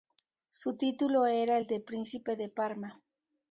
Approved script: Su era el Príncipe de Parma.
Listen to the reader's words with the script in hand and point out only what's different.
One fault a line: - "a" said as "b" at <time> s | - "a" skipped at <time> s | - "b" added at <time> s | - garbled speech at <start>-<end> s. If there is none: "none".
- "título" added at 0.8 s
- "de" added at 1.7 s